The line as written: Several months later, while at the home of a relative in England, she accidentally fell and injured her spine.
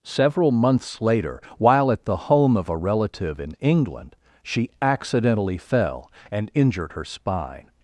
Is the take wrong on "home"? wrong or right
right